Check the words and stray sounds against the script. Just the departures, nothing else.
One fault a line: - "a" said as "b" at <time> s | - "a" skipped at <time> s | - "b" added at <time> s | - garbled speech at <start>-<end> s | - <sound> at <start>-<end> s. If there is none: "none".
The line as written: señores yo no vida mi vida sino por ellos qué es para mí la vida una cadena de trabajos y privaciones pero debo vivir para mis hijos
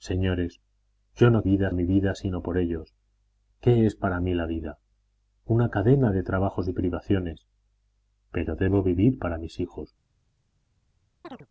- chirp at 11.2-11.5 s